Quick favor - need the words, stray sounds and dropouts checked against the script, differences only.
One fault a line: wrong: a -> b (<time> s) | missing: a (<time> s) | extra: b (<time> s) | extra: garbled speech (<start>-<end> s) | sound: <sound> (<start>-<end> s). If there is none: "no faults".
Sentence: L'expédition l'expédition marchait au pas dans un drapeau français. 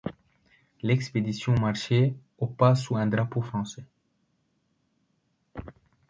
missing: l'expédition (1.5 s)
wrong: dans -> sous (2.7 s)